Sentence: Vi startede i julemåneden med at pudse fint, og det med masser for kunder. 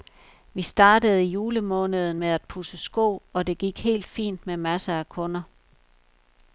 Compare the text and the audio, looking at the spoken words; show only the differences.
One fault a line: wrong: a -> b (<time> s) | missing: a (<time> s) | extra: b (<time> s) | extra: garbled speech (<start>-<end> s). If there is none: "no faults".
wrong: fint -> sko (2.8 s)
extra: gik helt fint (3.6 s)
wrong: for -> af (5.0 s)